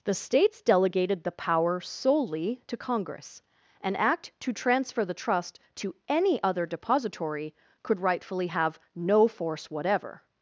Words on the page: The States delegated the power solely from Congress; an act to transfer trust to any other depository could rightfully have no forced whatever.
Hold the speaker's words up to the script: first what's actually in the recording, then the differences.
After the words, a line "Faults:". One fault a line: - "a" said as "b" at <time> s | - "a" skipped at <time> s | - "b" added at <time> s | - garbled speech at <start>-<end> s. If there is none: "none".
The States delegated the power solely to Congress; an act to transfer the trust to any other depository could rightfully have no force whatever.
Faults:
- "from" said as "to" at 2.6 s
- "the" added at 5.0 s
- "forced" said as "force" at 9.3 s